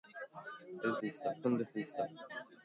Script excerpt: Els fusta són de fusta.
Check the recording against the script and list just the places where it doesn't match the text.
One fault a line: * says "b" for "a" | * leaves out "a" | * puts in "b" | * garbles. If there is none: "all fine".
all fine